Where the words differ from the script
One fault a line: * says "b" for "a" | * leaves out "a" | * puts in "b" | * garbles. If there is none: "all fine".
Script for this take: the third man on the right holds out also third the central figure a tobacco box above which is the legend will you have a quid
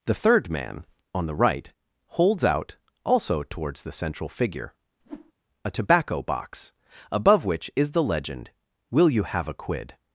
* says "towards" for "third"